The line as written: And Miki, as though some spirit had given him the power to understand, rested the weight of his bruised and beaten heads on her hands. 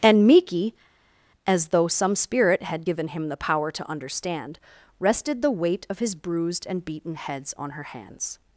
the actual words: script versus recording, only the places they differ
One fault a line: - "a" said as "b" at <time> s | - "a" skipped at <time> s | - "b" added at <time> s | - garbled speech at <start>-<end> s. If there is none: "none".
none